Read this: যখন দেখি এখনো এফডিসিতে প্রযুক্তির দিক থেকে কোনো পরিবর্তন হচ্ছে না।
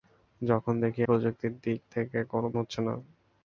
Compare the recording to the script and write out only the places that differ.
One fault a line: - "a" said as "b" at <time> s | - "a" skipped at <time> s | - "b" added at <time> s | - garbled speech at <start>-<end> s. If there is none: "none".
- "এখনো এফডিসিতে" skipped at 1.0 s
- "পরিবর্তন" skipped at 2.5 s